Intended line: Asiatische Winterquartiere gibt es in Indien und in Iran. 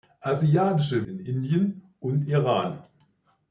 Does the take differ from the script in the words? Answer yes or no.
yes